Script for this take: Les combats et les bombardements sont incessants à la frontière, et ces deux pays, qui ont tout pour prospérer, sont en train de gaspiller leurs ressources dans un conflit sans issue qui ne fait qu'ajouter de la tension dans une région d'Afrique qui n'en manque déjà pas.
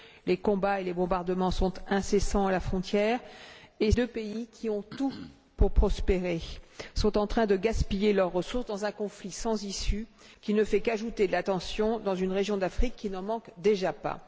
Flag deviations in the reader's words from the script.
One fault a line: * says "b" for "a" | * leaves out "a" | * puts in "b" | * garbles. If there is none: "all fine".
* leaves out "ces"